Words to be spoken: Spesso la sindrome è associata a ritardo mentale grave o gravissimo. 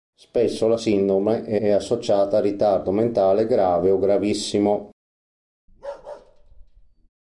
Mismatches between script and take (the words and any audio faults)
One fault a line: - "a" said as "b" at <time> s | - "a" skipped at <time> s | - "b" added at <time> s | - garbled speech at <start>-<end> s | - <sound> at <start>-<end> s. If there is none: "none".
- "è" added at 1.6 s
- bark at 5.7-7.1 s